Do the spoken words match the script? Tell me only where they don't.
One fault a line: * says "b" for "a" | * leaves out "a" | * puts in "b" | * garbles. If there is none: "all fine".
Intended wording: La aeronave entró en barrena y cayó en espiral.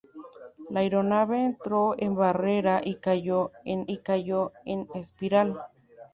* puts in "y cayó en"